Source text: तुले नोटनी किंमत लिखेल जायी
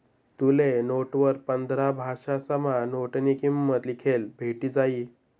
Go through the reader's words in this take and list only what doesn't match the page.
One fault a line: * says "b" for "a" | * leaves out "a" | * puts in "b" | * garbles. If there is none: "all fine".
* puts in "नोटवर पंधरा भाषासमा"
* puts in "भेटी"